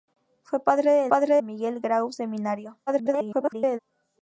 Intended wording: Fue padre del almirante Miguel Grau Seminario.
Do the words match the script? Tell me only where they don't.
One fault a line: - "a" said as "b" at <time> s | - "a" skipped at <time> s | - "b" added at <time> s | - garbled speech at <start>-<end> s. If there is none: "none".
- "almirante" said as "padre" at 1.1 s
- garbled speech at 2.9-3.8 s